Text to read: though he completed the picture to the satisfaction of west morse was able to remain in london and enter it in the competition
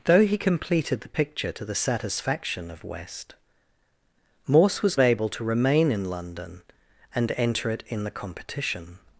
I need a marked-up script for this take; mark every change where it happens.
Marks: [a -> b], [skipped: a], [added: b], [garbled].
though he completed the picture to the satisfaction of west morse was able to remain in london and enter it in the competition